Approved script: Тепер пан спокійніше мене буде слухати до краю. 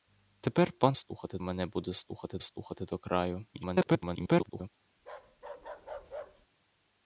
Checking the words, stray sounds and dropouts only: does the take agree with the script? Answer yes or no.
no